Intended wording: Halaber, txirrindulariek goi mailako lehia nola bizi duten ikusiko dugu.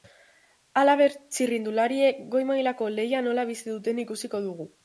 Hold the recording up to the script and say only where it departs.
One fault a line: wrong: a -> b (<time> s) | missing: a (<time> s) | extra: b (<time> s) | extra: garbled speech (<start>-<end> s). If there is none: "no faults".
no faults